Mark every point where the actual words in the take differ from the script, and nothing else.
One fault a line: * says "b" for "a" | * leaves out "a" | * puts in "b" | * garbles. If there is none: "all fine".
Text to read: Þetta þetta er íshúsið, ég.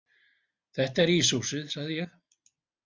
* leaves out "þetta"
* puts in "sagði"